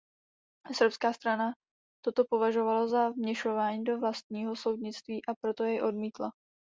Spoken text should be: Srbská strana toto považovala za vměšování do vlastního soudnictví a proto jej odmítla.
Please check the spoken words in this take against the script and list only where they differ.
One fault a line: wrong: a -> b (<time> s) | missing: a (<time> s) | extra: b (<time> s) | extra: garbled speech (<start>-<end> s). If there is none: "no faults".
no faults